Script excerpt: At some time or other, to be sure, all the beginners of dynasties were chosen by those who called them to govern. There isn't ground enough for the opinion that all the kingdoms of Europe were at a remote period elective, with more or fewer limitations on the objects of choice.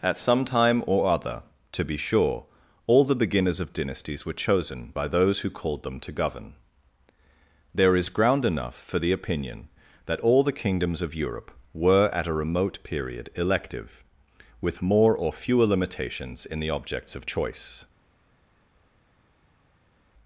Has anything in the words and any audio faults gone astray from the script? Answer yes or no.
yes